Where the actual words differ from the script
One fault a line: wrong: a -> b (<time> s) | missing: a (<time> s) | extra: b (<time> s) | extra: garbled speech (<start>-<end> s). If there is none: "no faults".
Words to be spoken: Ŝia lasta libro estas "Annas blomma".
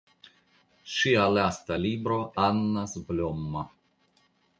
missing: estas (2.2 s)